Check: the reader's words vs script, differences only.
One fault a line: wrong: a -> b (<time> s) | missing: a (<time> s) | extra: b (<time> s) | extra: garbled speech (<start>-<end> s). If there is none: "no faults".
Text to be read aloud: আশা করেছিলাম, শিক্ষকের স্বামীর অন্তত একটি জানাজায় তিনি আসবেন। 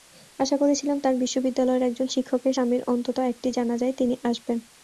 extra: তাঁর বিশ্ববিদ্যালয়ের একজন (1.0 s)